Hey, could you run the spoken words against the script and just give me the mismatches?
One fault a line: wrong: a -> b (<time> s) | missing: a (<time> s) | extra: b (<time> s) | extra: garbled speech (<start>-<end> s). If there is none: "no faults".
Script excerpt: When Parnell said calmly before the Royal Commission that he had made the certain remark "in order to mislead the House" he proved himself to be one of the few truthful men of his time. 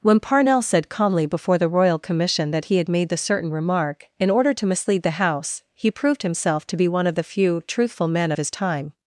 no faults